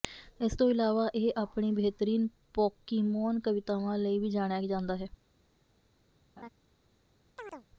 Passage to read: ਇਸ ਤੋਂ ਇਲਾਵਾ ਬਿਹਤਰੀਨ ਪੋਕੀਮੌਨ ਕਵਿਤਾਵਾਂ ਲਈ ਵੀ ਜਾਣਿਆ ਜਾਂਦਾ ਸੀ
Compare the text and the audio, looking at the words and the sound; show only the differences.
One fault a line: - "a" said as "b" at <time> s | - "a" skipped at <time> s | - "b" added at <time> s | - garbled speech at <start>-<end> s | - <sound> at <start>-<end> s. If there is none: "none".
- "ਇਹ ਆਪਣੀ" added at 1.1 s
- "ਸੀ" said as "ਹੈ" at 5.0 s
- laugh at 6.4-6.5 s
- chirp at 7.4-7.7 s